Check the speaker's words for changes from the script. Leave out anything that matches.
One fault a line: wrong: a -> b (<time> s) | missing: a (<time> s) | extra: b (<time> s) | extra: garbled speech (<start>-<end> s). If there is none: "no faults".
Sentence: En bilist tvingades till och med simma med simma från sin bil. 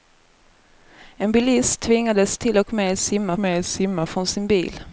no faults